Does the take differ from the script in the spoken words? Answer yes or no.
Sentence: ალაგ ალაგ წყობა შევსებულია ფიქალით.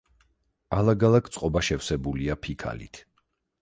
no